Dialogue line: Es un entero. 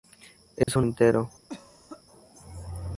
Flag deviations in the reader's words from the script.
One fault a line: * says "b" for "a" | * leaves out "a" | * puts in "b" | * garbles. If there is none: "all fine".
all fine